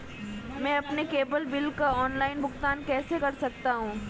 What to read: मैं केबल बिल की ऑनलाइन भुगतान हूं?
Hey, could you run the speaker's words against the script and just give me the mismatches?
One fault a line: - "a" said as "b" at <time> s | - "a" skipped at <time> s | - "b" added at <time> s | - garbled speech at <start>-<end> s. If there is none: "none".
- "अपने" added at 0.8 s
- "की" said as "का" at 1.7 s
- "कैसे कर सकता" added at 2.8 s